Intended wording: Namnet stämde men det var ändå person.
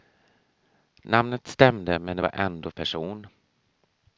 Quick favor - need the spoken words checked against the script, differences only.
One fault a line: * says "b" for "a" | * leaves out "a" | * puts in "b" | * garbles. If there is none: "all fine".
all fine